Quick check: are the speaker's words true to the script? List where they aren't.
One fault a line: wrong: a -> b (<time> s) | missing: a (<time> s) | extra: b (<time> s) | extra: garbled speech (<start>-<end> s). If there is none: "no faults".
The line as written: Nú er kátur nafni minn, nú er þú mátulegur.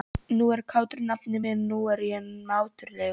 wrong: þú -> ég (2.1 s)